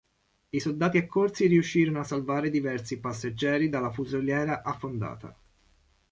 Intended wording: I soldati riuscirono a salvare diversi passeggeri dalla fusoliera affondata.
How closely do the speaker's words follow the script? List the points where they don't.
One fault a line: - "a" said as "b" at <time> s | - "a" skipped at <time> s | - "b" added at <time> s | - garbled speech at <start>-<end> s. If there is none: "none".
- "accorsi" added at 1.0 s